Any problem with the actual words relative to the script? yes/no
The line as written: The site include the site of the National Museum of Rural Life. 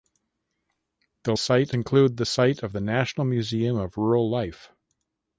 no